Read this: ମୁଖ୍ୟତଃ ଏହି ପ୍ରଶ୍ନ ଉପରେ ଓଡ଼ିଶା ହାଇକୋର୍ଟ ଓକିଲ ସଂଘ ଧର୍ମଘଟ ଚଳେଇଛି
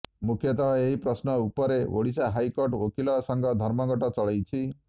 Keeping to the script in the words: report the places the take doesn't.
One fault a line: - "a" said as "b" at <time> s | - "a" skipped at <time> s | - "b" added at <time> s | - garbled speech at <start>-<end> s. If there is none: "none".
none